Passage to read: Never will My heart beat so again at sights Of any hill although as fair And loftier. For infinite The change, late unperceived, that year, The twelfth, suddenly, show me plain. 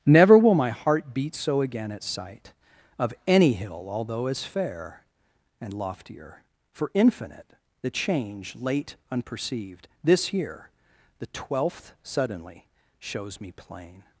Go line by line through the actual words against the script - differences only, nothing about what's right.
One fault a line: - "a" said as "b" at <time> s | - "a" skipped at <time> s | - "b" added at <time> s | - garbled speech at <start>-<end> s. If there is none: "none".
- "sights" said as "sight" at 2.0 s
- "that" said as "this" at 10.0 s
- "show" said as "shows" at 13.0 s